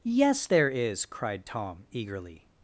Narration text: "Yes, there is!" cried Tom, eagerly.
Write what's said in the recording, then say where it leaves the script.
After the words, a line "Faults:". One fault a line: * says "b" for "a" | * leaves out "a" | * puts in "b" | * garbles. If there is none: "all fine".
"Yes, there is!" cried Tom, eagerly.
Faults:
all fine